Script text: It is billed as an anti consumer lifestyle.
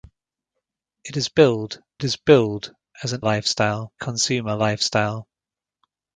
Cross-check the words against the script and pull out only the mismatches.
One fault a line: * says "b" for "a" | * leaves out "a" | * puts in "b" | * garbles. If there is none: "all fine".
* puts in "is billed"
* says "lifestyle" for "anti"